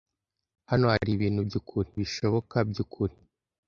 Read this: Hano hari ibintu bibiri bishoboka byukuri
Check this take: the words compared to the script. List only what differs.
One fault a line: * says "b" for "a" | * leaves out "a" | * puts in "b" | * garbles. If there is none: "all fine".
* says "byukuri" for "bibiri"